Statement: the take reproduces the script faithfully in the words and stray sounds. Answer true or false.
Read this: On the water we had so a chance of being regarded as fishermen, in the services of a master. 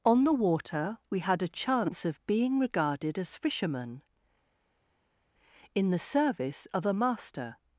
false